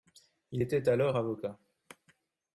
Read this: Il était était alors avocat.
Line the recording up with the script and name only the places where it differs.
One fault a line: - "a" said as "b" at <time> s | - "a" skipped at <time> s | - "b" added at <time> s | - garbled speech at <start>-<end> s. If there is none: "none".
- "était" skipped at 0.9 s